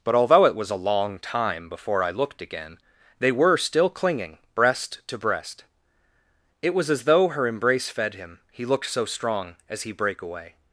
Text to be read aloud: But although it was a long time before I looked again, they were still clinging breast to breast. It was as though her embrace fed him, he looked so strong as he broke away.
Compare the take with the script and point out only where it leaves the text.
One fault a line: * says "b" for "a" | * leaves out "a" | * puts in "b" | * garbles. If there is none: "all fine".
* says "brake" for "broke"